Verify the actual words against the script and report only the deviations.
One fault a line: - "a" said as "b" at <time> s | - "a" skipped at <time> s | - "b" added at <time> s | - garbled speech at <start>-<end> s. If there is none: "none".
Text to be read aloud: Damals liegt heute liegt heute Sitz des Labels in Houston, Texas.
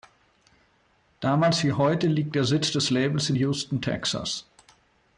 - "liegt" said as "wie" at 1.6 s
- "heute" said as "der" at 2.3 s